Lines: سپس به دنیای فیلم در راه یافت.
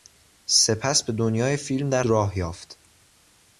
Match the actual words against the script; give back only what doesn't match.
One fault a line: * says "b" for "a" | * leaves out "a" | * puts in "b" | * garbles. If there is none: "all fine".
all fine